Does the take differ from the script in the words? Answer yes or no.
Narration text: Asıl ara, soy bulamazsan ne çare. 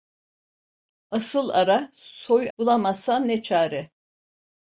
no